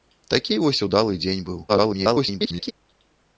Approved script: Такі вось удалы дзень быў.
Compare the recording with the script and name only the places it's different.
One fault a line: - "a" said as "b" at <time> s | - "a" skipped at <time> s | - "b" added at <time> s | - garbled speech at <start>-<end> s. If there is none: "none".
- garbled speech at 1.7-2.7 s